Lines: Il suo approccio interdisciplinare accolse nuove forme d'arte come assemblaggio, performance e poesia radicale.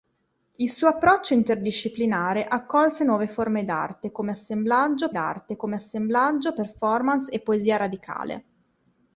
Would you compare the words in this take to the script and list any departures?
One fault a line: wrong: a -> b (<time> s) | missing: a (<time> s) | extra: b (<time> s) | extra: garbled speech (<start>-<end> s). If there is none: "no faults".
extra: d'arte come assemblaggio (5.1 s)